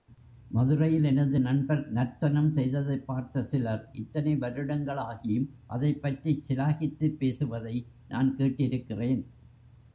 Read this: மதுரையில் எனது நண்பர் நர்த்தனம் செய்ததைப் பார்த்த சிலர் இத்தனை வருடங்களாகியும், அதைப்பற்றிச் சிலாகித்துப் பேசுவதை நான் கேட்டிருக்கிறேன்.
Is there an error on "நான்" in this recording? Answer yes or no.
no